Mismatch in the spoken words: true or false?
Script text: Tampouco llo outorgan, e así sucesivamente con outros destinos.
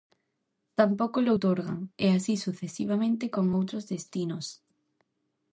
false